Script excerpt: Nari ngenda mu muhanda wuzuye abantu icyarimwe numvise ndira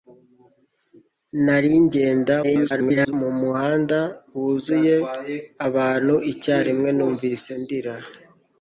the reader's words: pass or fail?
fail